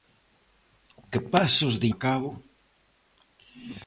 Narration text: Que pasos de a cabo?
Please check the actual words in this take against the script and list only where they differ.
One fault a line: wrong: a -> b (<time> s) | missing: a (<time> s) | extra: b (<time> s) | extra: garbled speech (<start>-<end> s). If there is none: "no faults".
no faults